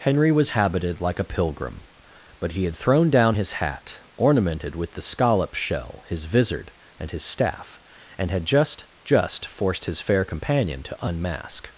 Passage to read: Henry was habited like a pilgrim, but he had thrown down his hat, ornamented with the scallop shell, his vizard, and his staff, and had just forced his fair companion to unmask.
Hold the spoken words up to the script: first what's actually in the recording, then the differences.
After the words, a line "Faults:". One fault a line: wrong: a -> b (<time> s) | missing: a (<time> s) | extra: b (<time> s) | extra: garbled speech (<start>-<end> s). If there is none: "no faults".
Henry was habited like a pilgrim, but he had thrown down his hat, ornamented with the scallop shell, his vizard, and his staff, and had just just forced his fair companion to unmask.
Faults:
extra: just (9.0 s)